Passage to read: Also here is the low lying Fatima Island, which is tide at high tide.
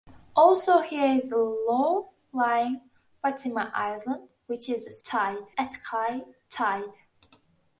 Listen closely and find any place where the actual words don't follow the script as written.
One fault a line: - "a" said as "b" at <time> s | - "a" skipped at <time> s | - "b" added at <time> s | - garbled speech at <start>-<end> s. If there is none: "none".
none